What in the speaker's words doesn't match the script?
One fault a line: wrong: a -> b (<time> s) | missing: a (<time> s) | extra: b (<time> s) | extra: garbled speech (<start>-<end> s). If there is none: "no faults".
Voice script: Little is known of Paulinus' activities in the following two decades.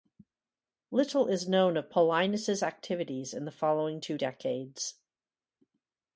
no faults